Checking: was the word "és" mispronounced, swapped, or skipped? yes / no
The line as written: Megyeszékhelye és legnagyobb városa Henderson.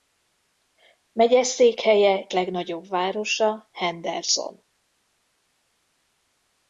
yes